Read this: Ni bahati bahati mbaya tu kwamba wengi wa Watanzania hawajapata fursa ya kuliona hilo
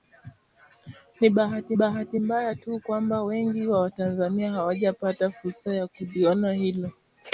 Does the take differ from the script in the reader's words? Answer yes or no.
no